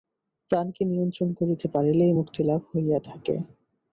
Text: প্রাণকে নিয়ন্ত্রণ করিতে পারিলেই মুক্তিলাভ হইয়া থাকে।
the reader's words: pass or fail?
pass